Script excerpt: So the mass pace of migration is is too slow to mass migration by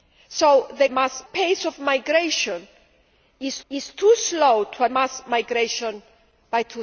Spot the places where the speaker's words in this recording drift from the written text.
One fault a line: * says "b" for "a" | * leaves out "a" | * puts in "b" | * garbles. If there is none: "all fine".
all fine